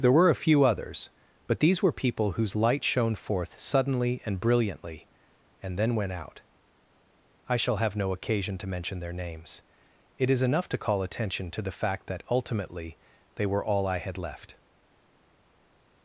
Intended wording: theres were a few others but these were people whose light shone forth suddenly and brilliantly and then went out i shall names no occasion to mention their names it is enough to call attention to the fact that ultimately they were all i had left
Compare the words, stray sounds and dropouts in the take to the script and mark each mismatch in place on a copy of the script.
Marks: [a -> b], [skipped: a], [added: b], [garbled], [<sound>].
[theres -> there] were a few others but these were people whose light shone forth suddenly and brilliantly and then went out i shall [names -> have] no occasion to mention their names it is enough to call attention to the fact that ultimately they were all i had left